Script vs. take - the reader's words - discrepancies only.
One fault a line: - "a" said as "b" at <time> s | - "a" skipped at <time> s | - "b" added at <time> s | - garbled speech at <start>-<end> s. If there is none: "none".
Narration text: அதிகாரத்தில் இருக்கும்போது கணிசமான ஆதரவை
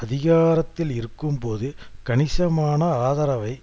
none